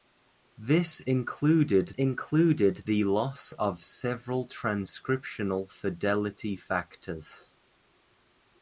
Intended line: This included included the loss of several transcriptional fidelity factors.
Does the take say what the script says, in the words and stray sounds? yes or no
yes